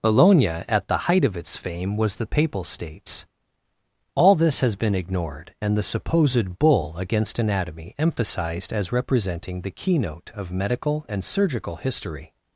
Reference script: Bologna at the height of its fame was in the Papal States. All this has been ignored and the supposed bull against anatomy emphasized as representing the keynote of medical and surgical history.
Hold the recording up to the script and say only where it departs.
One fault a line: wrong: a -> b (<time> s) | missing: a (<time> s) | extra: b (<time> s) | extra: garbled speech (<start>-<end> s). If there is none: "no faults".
missing: in (2.1 s)